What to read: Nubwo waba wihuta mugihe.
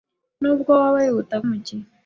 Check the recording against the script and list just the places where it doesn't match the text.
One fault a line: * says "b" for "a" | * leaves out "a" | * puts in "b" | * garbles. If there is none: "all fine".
all fine